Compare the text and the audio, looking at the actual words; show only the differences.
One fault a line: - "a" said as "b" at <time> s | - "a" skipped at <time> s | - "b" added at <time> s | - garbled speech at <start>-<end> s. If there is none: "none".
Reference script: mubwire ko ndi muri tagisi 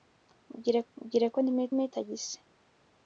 - "mubwire" added at 0.9 s
- "muri" added at 1.8 s